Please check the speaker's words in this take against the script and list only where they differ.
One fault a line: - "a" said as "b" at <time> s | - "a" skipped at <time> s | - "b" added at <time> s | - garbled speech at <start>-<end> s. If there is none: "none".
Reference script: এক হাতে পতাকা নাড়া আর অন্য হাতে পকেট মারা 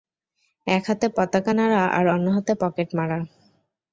none